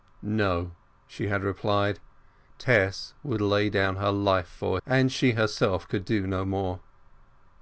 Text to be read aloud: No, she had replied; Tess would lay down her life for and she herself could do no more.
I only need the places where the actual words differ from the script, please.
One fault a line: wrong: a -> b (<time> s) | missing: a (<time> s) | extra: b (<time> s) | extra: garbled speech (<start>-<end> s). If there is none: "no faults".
no faults